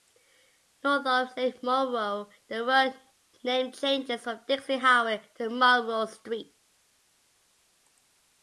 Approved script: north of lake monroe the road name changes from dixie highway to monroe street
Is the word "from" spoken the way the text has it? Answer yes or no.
yes